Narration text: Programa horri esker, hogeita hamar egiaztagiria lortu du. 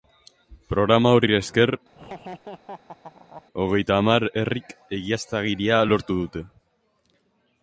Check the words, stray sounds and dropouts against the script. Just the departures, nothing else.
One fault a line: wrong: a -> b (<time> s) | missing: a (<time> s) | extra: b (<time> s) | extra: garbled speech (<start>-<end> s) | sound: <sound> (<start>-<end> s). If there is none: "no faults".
sound: laugh (1.9-3.4 s)
extra: herrik (4.4 s)
wrong: du -> dute (6.2 s)